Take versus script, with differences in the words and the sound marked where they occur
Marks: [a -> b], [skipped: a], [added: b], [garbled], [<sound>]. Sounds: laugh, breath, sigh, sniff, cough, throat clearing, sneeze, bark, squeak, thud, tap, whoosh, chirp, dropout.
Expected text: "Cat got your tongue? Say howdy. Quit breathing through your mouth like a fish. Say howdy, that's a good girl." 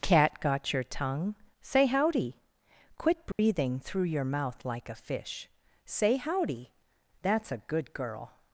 "Cat got your tongue? Say howdy. Quit breathing [dropout] through your mouth like a fish. Say howdy, that's a good girl."